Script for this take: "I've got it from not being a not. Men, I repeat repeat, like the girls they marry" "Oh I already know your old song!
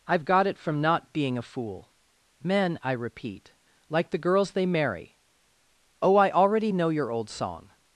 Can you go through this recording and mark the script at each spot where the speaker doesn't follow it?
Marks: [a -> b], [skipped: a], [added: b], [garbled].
"I've got it from not being a [not. -> fool] Men, I repeat [skipped: repeat,] like the girls they marry" "Oh I already know your old song!